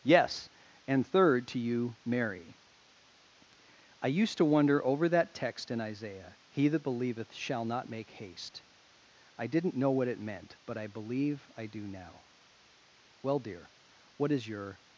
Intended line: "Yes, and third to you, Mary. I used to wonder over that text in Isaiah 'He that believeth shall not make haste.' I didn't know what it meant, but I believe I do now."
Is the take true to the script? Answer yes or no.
no